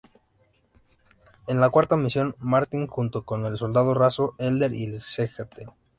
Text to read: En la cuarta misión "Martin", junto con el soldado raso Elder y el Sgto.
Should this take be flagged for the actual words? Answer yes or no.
no